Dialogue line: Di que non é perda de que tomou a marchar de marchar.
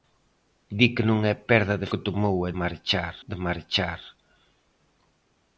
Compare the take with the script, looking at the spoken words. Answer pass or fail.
pass